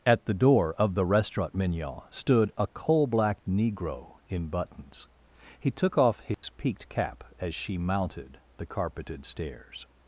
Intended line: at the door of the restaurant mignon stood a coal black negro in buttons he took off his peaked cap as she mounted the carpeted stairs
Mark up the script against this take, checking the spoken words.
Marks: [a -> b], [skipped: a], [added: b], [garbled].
at the door of the restaurant mignon stood a coal black negro in buttons he took off his peaked cap as she mounted the carpeted stairs